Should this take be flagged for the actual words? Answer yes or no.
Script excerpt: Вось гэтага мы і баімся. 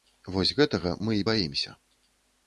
no